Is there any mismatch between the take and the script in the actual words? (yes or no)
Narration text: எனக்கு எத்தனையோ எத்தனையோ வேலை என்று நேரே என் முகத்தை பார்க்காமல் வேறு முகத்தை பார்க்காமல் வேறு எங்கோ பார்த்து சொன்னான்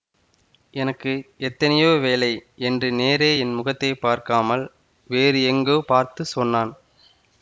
yes